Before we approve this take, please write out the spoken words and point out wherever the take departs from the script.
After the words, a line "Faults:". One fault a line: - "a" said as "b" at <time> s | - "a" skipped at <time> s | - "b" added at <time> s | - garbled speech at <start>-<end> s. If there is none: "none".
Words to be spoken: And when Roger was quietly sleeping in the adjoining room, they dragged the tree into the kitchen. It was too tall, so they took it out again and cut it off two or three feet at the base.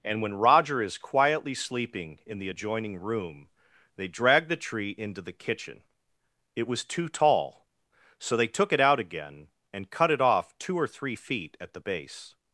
And when Roger is quietly sleeping in the adjoining room, they dragged the tree into the kitchen. It was too tall, so they took it out again and cut it off two or three feet at the base.
Faults:
- "was" said as "is" at 0.8 s